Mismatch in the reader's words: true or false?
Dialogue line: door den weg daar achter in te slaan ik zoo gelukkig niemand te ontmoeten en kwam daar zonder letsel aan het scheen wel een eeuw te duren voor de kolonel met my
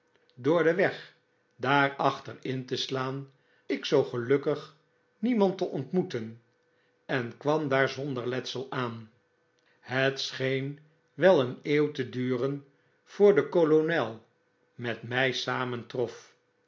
false